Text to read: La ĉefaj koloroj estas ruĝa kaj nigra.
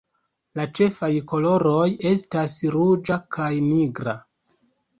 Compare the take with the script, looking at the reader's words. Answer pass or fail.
pass